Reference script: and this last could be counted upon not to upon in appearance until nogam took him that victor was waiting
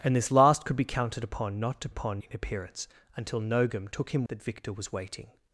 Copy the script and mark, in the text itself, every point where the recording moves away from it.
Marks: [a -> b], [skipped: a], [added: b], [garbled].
and this last could be counted upon not to upon in appearance until nogam took him that victor was waiting